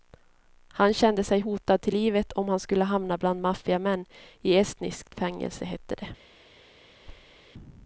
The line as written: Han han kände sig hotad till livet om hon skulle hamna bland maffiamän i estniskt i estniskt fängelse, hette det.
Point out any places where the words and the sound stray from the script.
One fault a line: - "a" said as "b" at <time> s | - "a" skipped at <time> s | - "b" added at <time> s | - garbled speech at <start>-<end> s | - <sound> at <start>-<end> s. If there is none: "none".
- "han" skipped at 0.9 s
- "hon" said as "han" at 2.5 s
- "i estniskt" skipped at 5.1 s
- thud at 7.1-7.4 s